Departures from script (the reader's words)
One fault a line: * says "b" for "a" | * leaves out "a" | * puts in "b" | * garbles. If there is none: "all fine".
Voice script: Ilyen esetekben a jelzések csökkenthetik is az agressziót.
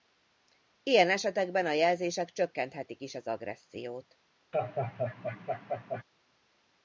all fine